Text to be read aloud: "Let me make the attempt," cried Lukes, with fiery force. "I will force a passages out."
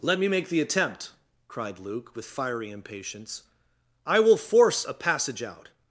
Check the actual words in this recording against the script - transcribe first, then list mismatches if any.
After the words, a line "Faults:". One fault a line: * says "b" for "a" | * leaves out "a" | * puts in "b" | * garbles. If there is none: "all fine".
"Let me make the attempt," cried Luke, with fiery impatience. "I will force a passage out."
Faults:
* says "Luke" for "Lukes"
* says "impatience" for "force"
* says "passage" for "passages"